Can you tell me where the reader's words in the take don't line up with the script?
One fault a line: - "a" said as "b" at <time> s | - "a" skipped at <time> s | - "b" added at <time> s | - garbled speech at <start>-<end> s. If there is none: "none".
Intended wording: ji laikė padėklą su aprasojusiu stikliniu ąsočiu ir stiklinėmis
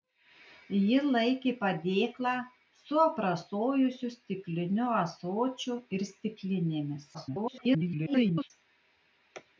- garbled speech at 7.1-8.5 s